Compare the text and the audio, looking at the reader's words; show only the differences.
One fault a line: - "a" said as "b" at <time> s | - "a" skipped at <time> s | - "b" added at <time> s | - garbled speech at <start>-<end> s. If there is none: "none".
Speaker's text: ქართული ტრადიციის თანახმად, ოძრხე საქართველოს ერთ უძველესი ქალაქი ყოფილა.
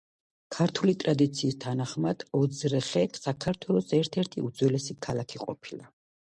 - "ერთი" added at 4.3 s